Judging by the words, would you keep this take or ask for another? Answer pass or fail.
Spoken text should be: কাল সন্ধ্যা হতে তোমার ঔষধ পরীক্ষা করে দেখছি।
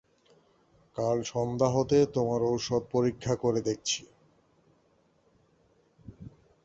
pass